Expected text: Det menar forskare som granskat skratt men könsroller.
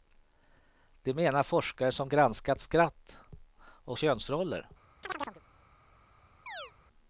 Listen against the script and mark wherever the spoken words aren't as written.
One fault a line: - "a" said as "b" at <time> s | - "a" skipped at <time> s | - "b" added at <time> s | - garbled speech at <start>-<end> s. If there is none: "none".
- "men" said as "och" at 3.6 s